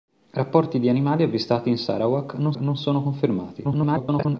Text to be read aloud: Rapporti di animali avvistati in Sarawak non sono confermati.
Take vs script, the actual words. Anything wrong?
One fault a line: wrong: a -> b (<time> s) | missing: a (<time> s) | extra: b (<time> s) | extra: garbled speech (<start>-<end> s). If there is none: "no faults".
extra: non (2.5 s)
extra: garbled speech (3.6-4.4 s)